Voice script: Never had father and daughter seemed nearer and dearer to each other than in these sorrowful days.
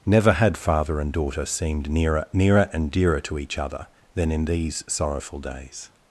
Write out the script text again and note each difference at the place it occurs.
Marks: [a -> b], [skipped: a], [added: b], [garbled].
Never had father and daughter seemed nearer [added: nearer] and dearer to each other than in these sorrowful days.